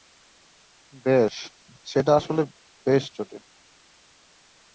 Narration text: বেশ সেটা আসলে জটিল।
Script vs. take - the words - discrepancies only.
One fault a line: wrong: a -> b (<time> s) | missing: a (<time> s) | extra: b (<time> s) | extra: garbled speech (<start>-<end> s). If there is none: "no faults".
extra: বেশ (2.9 s)